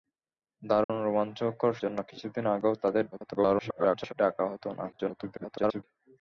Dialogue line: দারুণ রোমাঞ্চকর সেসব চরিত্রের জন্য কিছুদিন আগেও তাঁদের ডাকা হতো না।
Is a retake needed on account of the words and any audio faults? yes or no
yes